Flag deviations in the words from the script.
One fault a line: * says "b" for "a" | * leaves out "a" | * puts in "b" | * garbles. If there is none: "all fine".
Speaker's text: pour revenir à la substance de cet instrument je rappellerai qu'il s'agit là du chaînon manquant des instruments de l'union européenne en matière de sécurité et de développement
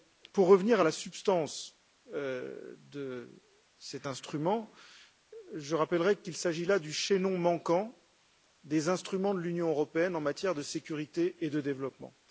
all fine